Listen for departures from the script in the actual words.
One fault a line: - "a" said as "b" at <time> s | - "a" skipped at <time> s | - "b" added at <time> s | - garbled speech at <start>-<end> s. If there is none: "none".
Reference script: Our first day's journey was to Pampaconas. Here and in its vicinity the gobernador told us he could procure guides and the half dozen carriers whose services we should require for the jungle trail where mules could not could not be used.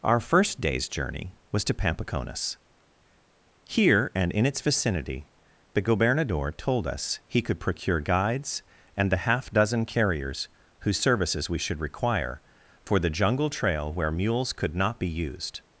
- "could not" skipped at 15.0 s